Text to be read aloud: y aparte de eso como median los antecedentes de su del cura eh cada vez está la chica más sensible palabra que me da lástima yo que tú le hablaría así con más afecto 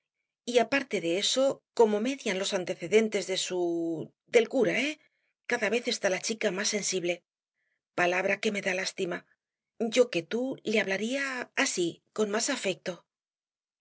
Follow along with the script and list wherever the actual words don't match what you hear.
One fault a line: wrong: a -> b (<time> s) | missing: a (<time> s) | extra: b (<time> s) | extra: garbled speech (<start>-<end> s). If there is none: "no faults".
no faults